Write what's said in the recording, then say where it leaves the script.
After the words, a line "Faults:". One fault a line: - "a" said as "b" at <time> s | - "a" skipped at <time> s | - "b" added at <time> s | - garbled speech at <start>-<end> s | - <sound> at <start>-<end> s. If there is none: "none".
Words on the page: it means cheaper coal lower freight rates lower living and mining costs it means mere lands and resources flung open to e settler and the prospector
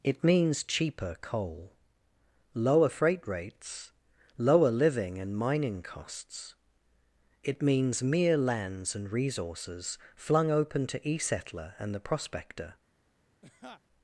it means cheaper coal lower freight rates lower living and mining costs it means mere lands and resources flung open to e settler and the prospector
Faults:
- laugh at 13.4-13.8 s